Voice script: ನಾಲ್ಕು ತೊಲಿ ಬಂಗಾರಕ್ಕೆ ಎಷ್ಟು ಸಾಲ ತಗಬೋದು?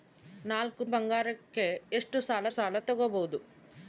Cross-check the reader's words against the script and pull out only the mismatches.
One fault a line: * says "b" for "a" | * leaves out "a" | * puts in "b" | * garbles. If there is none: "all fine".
* leaves out "ತೊಲಿ"
* puts in "ಸಾಲ"